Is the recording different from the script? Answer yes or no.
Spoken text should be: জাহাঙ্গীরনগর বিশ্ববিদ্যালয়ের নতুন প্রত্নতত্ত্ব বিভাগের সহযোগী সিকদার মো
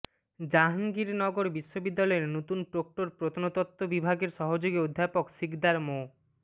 yes